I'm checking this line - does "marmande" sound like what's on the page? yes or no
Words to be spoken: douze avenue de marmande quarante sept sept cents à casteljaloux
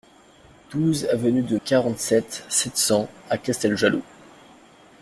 no